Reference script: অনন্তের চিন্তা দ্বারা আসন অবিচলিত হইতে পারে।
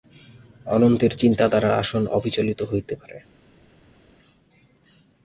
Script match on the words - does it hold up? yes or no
yes